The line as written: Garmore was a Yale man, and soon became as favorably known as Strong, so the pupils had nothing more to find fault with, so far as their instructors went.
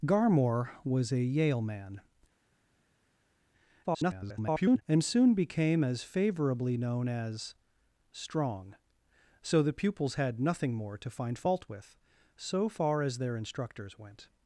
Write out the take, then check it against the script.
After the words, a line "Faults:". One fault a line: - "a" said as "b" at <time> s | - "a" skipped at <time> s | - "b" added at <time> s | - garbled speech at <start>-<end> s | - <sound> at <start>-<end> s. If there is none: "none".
Garmore was a Yale man, [garbled] and soon became as favorably known as Strong, so the pupils had nothing more to find fault with, so far as their instructors went.
Faults:
- garbled speech at 3.8-4.8 s